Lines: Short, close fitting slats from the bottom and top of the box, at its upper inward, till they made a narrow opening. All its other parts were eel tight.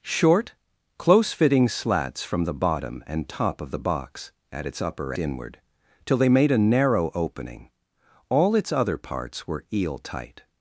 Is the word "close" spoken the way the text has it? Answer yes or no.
yes